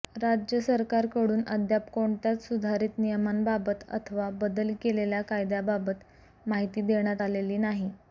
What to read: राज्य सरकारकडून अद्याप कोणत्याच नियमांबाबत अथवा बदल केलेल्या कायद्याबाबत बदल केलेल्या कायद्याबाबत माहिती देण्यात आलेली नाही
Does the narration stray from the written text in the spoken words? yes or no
yes